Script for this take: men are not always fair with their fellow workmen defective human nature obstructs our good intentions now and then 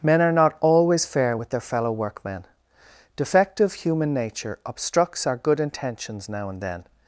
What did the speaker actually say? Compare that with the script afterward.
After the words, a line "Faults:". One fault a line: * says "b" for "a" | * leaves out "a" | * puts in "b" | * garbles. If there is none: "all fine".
men are not always fair with their fellow workmen defective human nature obstructs our good intentions now and then
Faults:
all fine